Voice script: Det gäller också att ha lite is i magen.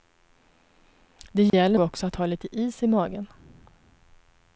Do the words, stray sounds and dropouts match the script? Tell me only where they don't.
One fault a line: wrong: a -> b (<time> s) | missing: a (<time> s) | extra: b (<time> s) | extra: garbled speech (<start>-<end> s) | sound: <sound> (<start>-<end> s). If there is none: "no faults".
sound: dropout (1.5-1.5 s)